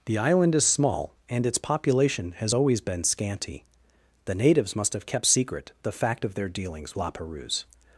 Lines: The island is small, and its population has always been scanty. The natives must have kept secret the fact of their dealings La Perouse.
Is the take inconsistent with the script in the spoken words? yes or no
no